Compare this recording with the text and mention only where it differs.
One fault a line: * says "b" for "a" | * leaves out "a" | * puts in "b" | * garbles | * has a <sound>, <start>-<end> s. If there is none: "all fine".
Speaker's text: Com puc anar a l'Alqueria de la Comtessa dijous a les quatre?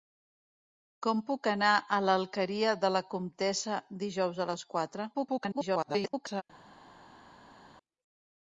* garbles